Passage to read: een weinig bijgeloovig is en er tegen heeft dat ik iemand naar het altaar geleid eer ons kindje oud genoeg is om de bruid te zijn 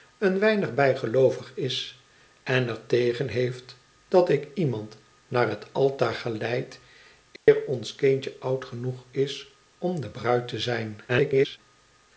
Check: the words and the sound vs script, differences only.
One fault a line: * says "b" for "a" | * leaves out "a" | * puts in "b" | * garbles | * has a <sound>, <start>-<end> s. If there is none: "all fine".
* has a dropout, 7.4-7.5 s
* garbles